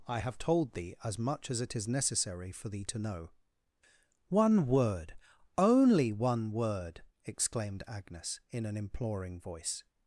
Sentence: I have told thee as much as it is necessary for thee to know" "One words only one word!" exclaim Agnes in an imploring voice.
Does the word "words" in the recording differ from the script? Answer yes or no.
yes